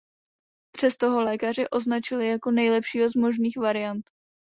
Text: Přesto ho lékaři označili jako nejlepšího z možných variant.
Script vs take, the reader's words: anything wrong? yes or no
no